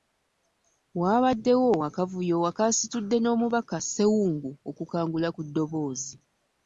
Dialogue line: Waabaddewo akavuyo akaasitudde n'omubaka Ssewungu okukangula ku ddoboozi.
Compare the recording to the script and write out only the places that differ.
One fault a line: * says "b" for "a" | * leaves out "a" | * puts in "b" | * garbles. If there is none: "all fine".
all fine